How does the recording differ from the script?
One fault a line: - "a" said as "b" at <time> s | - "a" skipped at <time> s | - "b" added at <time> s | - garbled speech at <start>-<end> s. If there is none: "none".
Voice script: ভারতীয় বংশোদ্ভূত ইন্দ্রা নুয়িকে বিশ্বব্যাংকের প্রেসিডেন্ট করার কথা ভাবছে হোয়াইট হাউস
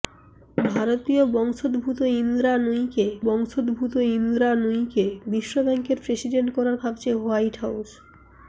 - "বংশোদ্ভূত ইন্দ্রা নুয়িকে" added at 3.2 s
- "কথা" skipped at 6.8 s